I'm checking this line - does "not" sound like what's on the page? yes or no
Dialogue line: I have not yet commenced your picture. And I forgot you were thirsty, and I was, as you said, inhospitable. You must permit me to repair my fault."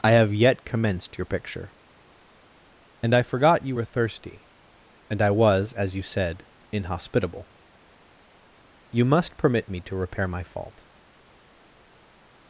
no